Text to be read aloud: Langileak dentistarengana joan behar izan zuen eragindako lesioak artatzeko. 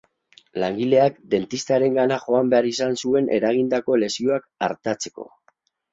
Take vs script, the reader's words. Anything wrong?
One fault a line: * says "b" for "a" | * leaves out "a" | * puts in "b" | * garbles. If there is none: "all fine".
all fine